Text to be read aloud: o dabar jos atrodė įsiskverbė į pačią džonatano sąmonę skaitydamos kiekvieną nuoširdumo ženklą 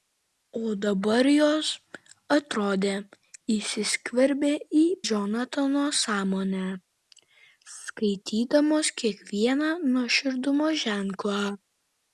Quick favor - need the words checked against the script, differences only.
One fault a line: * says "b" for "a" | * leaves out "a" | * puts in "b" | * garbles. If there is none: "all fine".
* leaves out "pačią"